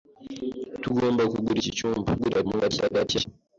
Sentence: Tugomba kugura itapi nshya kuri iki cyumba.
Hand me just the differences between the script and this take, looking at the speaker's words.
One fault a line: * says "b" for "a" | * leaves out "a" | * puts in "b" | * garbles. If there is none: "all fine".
* leaves out "itapi nshya kuri"
* garbles